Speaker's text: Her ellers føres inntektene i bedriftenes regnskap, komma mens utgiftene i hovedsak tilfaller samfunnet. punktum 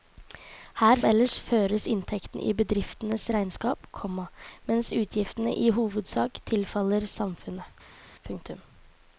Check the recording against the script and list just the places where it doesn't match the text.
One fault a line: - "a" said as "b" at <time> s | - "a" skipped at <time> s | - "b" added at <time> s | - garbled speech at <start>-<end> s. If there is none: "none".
none